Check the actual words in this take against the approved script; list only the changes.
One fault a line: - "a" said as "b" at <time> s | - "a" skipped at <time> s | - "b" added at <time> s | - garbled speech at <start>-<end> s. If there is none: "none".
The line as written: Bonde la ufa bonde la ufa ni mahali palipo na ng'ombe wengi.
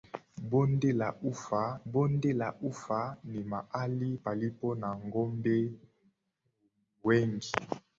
none